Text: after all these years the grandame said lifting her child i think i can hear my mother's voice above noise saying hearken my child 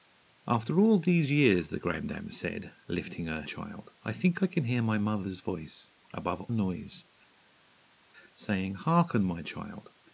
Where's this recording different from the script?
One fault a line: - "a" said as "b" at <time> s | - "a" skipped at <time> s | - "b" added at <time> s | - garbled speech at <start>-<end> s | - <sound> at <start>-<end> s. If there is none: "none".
none